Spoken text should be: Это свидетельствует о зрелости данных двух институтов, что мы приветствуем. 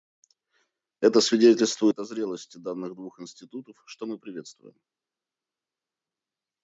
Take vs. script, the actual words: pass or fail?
pass